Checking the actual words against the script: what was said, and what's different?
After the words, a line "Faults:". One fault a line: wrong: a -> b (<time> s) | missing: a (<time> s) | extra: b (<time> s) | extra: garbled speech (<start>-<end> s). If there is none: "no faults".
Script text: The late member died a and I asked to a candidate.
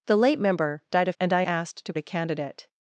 The late member died a and I asked to a candidate.
Faults:
no faults